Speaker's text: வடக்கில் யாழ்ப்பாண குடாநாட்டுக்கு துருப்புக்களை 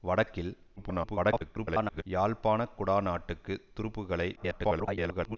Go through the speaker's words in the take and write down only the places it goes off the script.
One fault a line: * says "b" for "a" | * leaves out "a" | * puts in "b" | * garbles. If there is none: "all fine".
* garbles
* garbles